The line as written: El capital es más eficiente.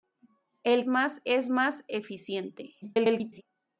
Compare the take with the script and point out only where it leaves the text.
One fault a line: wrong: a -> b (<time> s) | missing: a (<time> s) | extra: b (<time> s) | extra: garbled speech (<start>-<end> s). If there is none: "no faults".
wrong: capital -> más (0.9 s)
extra: garbled speech (2.8-3.4 s)